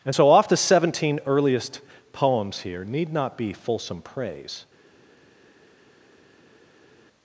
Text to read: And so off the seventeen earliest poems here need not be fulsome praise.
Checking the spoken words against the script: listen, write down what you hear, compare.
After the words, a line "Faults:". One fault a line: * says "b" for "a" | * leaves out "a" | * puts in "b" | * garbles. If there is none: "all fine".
And so off the seventeen earliest poems here need not be fulsome praise.
Faults:
all fine